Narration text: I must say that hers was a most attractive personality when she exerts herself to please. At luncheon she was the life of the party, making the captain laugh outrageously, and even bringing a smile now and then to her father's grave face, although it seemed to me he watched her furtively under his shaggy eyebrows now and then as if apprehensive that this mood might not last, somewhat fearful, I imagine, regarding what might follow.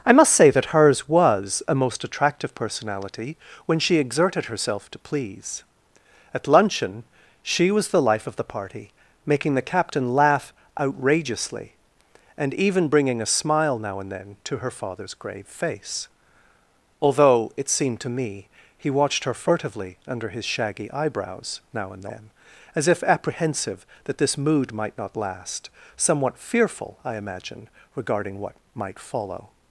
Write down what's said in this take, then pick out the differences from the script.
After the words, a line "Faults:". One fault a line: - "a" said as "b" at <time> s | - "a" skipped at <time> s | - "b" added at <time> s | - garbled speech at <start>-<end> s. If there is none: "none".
I must say that hers was a most attractive personality when she exerted herself to please. At luncheon she was the life of the party, making the captain laugh outrageously, and even bringing a smile now and then to her father's grave face, although it seemed to me he watched her furtively under his shaggy eyebrows now and then as if apprehensive that this mood might not last, somewhat fearful, I imagine, regarding what might follow.
Faults:
- "exerts" said as "exerted" at 4.0 s